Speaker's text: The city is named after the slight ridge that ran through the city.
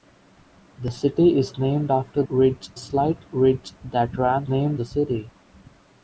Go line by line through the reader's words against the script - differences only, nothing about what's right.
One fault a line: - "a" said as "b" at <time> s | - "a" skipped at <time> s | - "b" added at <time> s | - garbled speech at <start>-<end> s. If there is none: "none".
- "the" said as "ridge" at 2.3 s
- "through" said as "named" at 4.5 s